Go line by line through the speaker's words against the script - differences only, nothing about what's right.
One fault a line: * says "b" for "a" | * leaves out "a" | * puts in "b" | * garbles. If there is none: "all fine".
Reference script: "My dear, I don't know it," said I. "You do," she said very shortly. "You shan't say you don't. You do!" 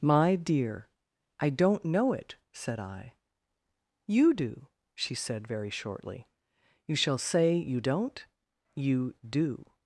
* says "shall" for "shan't"